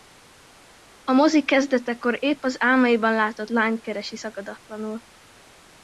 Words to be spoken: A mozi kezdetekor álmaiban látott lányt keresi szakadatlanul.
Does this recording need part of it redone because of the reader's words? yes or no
yes